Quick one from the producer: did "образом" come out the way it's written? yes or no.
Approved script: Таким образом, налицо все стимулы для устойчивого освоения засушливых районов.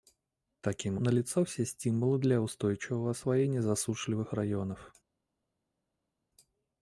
no